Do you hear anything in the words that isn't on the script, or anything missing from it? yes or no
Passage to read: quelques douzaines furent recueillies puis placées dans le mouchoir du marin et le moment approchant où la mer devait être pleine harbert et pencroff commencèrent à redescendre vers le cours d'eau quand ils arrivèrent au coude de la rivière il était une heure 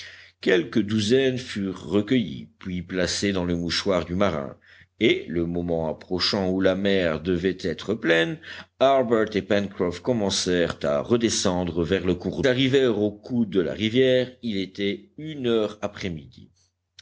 yes